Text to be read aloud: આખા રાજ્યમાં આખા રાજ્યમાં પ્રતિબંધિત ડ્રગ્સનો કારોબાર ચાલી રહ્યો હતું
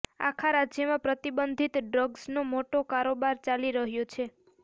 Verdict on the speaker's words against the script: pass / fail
fail